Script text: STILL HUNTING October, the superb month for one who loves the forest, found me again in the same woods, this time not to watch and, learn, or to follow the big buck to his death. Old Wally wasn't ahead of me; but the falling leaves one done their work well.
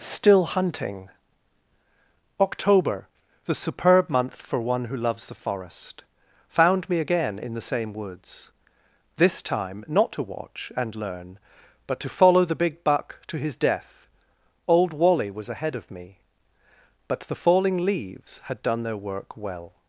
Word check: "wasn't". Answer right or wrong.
wrong